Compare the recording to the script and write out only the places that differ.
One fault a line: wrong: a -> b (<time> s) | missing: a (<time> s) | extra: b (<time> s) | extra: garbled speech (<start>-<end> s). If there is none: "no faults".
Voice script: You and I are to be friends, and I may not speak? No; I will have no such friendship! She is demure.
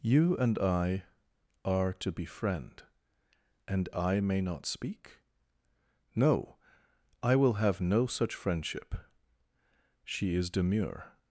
wrong: friends -> friend (2.2 s)